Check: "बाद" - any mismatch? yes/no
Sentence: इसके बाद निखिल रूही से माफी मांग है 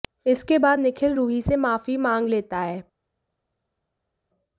no